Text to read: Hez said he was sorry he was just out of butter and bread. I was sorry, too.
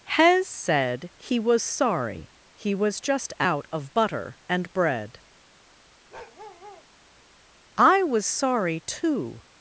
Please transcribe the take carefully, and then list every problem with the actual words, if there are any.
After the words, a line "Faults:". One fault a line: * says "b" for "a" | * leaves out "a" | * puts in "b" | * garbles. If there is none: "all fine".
Hez said he was sorry he was just out of butter and bread. I was sorry, too.
Faults:
all fine